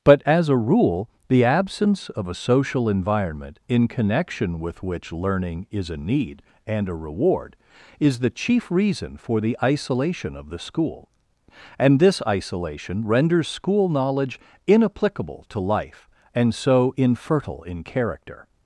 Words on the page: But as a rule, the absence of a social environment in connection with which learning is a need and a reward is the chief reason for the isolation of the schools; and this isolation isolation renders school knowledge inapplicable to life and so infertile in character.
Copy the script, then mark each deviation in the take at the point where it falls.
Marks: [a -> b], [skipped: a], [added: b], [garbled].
But as a rule, the absence of a social environment in connection with which learning is a need and a reward is the chief reason for the isolation of the [schools; -> school] and this isolation [skipped: isolation] renders school knowledge inapplicable to life and so infertile in character.